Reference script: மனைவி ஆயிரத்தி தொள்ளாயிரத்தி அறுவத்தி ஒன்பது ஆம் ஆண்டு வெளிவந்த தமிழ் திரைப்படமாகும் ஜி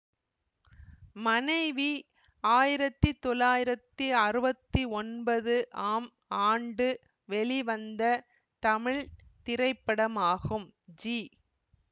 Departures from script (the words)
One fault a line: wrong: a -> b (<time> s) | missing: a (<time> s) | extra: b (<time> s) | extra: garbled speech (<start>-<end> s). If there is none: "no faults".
no faults